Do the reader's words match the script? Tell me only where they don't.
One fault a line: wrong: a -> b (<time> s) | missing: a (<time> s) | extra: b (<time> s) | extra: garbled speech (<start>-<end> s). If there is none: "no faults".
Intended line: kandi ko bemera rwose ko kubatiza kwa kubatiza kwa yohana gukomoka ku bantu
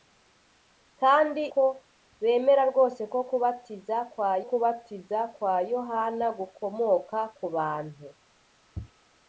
no faults